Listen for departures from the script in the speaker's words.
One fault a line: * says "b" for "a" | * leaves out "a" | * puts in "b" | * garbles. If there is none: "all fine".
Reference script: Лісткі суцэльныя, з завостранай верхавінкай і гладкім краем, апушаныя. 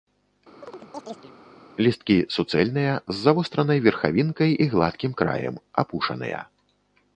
all fine